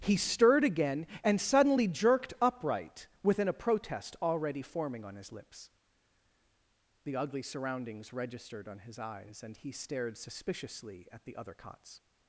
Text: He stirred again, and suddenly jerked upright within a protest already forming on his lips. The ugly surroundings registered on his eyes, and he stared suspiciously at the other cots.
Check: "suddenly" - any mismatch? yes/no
no